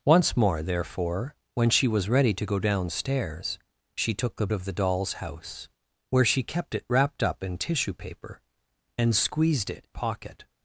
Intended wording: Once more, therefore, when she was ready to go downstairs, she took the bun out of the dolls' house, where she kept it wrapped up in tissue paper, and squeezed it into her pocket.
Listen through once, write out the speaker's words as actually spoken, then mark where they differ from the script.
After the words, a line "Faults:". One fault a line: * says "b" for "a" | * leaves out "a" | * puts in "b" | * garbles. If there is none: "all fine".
Once more, therefore, when she was ready to go downstairs, she took the of the dolls' house, where she kept it wrapped up in tissue paper, and squeezed it pocket.
Faults:
* leaves out "bun out"
* leaves out "into her"